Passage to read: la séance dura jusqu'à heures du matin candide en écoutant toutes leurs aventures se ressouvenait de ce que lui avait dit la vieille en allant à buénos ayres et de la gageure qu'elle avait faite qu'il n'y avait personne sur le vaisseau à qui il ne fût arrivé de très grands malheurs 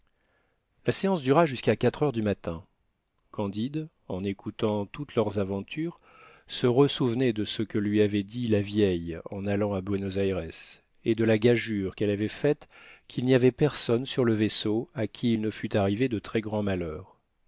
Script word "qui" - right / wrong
right